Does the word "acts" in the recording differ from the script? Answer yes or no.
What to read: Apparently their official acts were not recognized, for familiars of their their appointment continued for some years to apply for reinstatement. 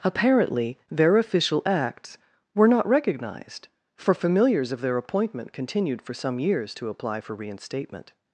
no